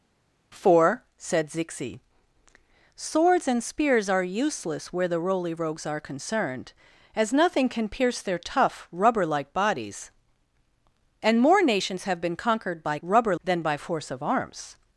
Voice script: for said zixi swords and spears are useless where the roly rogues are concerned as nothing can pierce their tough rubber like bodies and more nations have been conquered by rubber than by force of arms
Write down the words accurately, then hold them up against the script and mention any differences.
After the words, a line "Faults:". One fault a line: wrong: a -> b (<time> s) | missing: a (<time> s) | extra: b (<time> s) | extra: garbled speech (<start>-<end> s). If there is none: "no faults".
for said zixi swords and spears are useless where the roly rogues are concerned as nothing can pierce their tough rubber like bodies and more nations have been conquered by rubber than by force of arms
Faults:
no faults